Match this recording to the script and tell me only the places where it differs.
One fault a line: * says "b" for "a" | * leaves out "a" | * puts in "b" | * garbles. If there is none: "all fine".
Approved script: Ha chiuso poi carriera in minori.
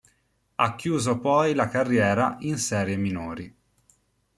* puts in "la"
* puts in "serie"